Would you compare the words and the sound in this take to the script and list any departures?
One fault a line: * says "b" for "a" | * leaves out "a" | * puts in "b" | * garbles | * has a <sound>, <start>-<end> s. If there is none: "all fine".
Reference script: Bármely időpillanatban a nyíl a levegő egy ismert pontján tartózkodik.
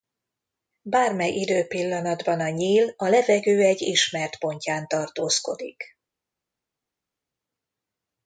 all fine